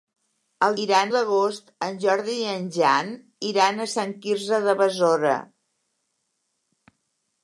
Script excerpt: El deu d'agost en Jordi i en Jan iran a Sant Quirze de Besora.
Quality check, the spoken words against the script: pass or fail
fail